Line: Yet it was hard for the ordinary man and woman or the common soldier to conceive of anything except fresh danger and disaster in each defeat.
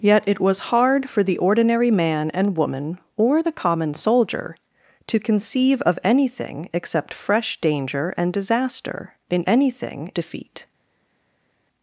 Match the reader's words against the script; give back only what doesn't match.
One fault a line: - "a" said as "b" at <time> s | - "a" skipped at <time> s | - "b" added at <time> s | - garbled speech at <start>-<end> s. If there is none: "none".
- "each" said as "anything" at 9.5 s